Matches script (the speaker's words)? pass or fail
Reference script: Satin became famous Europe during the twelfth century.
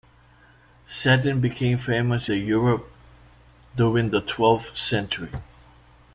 pass